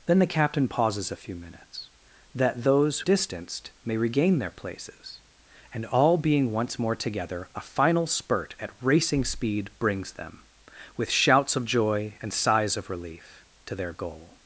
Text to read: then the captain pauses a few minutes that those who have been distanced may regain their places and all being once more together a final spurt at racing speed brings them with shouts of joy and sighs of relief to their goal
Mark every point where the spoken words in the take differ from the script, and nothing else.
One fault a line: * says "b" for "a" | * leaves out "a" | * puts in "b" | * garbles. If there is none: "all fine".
* leaves out "who have been"